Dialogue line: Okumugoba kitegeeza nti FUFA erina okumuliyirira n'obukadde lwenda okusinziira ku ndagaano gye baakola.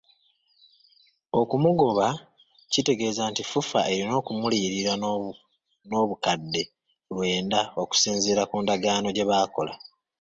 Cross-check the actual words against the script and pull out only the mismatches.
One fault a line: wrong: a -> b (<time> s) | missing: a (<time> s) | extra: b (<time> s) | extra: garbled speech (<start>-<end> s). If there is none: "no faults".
no faults